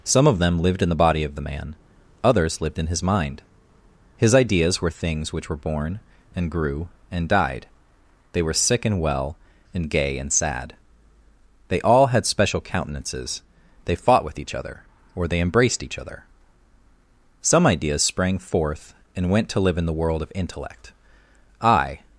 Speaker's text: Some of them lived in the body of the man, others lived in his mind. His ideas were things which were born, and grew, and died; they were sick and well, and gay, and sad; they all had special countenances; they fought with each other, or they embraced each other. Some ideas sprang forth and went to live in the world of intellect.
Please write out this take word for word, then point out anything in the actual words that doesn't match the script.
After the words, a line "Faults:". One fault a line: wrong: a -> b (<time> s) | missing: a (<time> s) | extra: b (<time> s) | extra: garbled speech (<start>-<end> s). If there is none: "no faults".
Some of them lived in the body of the man, others lived in his mind. His ideas were things which were born, and grew, and died; they were sick and well, and gay, and sad; they all had special countenances; they fought with each other, or they embraced each other. Some ideas sprang forth and went to live in the world of intellect. I
Faults:
extra: I (21.6 s)